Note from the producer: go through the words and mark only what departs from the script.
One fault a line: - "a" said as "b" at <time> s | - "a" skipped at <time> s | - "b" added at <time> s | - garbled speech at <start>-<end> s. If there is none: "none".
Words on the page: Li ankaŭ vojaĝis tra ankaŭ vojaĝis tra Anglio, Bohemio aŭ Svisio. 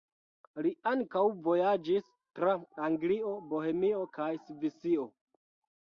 - "ankaŭ vojaĝis tra" skipped at 2.6 s
- "aŭ" said as "kaj" at 4.2 s